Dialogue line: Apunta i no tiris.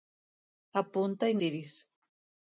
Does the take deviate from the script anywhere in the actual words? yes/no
yes